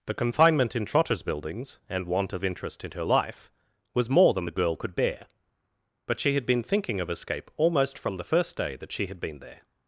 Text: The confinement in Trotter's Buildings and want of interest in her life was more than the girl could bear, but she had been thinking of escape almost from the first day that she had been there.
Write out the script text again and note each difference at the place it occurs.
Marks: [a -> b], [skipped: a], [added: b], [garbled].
The confinement in Trotter's Buildings and want of interest in her life was more than the girl could bear, but she had been thinking of escape almost from the first day that she had been there.